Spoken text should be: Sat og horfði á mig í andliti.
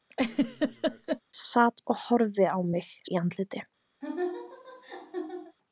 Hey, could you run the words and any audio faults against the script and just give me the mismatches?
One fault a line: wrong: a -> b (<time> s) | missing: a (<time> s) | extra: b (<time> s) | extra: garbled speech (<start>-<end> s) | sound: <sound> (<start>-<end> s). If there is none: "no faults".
sound: laugh (0.1-1.2 s)
sound: laugh (4.0-5.6 s)